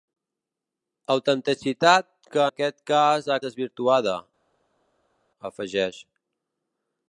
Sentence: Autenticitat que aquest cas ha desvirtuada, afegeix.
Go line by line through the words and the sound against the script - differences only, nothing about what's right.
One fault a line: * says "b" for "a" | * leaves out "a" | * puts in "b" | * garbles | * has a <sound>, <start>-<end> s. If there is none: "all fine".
all fine